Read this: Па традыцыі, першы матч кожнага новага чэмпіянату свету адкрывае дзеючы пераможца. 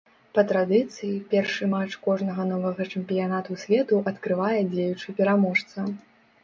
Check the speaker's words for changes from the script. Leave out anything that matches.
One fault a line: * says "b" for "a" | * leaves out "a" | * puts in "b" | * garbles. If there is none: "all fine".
all fine